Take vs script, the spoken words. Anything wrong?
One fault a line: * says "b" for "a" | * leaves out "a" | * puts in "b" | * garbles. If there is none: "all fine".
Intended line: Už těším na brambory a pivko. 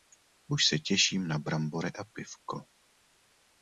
* puts in "se"